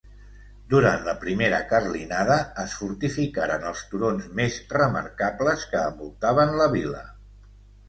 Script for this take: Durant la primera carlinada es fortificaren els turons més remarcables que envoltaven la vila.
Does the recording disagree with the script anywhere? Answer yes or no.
no